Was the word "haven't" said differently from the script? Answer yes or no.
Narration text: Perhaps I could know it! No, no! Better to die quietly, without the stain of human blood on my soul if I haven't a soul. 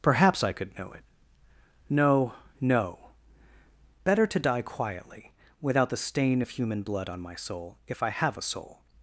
yes